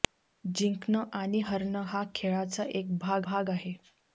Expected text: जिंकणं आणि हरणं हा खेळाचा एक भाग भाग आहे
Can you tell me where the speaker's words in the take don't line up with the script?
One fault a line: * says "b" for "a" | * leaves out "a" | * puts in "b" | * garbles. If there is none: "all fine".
all fine